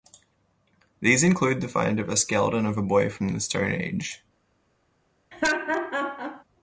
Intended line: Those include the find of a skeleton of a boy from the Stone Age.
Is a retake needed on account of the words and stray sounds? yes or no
yes